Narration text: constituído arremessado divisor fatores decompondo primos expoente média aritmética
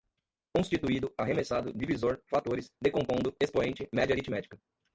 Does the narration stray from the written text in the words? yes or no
yes